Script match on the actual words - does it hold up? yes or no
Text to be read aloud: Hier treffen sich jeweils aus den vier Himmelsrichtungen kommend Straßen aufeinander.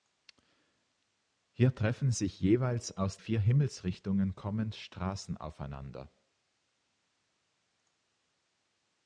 no